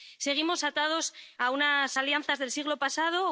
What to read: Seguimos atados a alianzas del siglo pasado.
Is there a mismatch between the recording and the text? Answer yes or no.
yes